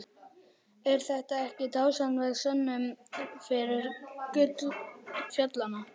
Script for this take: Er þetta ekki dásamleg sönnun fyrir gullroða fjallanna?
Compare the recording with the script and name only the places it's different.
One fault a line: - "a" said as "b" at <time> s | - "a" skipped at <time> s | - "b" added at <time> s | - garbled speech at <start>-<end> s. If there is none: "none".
- "gullroða" skipped at 3.9 s